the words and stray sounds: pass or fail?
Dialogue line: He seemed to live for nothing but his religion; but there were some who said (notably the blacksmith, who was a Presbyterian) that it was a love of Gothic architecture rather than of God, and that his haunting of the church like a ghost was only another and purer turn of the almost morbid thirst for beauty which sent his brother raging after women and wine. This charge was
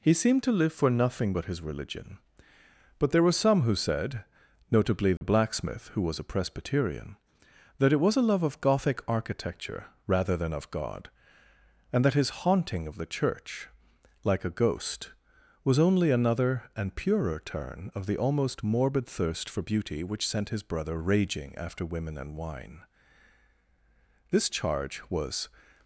fail